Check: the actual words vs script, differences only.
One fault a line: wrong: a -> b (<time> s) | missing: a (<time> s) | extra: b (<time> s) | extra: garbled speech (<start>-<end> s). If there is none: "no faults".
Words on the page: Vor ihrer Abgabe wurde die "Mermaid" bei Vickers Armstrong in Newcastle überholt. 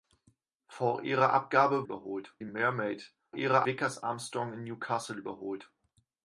wrong: wurde -> überholt (1.8 s)
wrong: bei -> ihrer (3.4 s)